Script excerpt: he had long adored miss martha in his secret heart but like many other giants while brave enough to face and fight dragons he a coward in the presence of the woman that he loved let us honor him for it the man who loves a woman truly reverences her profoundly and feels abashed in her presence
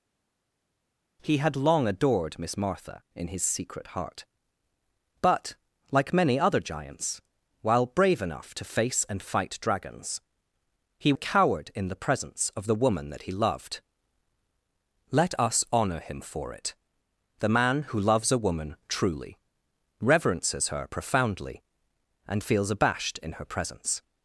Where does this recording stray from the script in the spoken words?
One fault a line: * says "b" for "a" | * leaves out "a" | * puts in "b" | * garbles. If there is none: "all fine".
all fine